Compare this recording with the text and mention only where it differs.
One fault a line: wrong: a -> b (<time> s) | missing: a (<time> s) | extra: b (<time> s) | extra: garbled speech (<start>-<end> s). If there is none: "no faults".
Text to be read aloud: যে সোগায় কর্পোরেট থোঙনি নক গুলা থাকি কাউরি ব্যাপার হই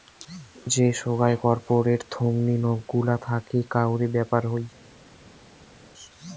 no faults